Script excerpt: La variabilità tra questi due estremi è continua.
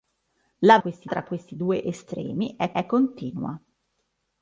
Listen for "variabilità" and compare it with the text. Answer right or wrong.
wrong